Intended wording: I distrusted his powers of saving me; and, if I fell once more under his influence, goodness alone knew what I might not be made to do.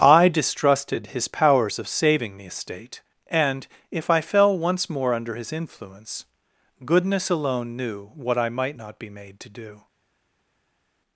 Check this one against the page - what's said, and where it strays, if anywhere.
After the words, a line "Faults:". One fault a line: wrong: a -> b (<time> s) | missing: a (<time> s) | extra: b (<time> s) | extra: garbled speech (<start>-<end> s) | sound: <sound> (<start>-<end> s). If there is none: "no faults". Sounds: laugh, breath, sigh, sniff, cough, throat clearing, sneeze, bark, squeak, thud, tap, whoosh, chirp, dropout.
I distrusted his powers of saving the estate; and, if I fell once more under his influence, goodness alone knew what I might not be made to do.
Faults:
wrong: me -> the estate (2.4 s)